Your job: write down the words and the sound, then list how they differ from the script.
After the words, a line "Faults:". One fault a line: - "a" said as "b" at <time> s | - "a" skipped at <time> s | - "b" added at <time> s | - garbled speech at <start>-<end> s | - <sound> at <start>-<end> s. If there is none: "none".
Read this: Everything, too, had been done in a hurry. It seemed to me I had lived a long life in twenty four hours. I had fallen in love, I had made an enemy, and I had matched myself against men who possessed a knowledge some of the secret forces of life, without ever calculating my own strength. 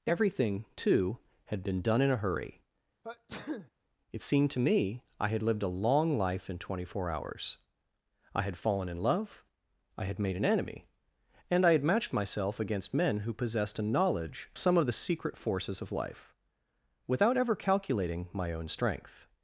Everything, too, had been done in a hurry. It seemed to me I had lived a long life in twenty four hours. I had fallen in love, I had made an enemy, and I had matched myself against men who possessed a knowledge some of the secret forces of life, without ever calculating my own strength.
Faults:
- sneeze at 3.0-3.7 s